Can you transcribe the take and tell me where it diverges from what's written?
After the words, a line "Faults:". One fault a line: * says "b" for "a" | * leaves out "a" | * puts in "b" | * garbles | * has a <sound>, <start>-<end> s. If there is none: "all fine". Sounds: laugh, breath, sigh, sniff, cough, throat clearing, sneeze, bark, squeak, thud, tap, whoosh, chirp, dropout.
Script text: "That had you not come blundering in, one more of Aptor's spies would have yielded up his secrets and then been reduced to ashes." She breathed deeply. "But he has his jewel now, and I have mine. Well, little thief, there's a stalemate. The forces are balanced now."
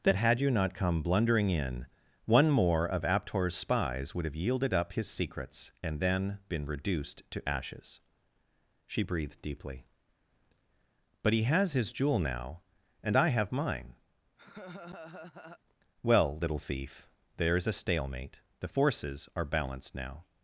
"That had you not come blundering in, one more of Aptor's spies would have yielded up his secrets and then been reduced to ashes." She breathed deeply. "But he has his jewel now, and I have mine. Well, little thief, there's a stalemate. The forces are balanced now."
Faults:
* has a laugh, 14.4-15.6 s